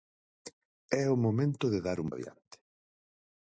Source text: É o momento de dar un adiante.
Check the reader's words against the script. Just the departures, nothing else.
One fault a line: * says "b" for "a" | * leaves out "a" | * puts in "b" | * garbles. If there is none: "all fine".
all fine